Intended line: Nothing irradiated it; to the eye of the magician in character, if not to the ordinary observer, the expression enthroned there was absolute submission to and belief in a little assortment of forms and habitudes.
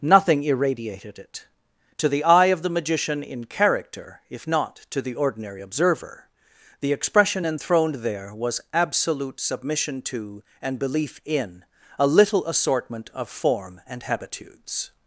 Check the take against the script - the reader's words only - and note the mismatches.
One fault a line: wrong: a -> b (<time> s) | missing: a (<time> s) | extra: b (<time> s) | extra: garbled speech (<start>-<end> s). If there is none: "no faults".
wrong: forms -> form (13.3 s)